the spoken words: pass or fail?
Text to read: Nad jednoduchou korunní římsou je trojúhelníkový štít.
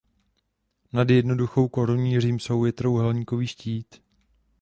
pass